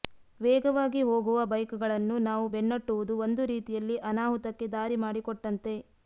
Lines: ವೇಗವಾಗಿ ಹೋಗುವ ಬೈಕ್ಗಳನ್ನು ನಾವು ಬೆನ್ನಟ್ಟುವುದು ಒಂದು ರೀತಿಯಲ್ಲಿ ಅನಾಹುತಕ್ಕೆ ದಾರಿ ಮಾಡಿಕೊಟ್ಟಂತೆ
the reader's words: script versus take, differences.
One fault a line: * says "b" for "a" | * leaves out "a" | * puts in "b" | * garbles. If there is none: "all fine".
all fine